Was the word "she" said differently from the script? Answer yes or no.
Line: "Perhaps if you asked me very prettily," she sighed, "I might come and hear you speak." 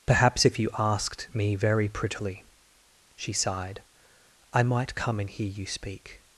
no